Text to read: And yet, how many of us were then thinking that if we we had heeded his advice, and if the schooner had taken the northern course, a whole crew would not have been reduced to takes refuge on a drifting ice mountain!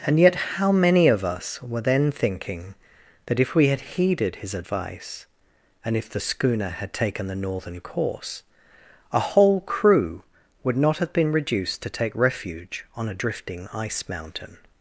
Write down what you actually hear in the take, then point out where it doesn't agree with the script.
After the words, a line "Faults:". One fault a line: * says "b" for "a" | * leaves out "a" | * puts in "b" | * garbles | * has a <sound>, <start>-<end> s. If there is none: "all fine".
And yet, how many of us were then thinking that if we had heeded his advice, and if the schooner had taken the northern course, a whole crew would not have been reduced to take refuge on a drifting ice mountain!
Faults:
* leaves out "we"
* says "take" for "takes"